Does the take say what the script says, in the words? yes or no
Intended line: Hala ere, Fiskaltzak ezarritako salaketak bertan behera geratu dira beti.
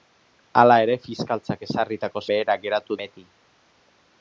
no